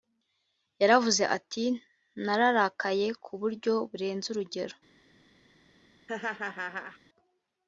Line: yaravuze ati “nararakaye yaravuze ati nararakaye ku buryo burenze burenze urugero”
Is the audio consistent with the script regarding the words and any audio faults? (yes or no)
no